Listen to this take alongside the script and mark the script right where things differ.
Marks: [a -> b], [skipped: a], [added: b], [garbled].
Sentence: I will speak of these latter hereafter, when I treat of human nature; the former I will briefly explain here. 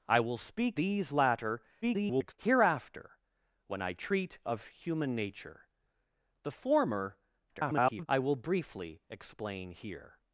I will speak [skipped: of] these latter [garbled] hereafter, when I treat of human nature; the former [garbled] I will briefly explain here.